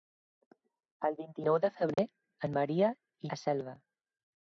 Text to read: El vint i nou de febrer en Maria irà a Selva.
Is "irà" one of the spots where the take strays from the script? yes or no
yes